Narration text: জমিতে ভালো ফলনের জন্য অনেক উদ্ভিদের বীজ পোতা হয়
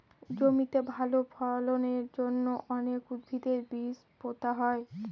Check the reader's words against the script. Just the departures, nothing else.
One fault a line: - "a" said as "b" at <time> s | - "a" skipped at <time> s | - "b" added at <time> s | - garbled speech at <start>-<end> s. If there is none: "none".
none